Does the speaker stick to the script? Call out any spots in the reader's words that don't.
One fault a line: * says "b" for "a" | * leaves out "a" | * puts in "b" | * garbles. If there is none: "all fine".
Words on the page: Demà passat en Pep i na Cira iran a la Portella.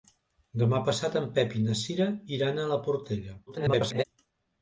* garbles